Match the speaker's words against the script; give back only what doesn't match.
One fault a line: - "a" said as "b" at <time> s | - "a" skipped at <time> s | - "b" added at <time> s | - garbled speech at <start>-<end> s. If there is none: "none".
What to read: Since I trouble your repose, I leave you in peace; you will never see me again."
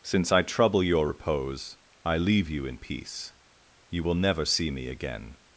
none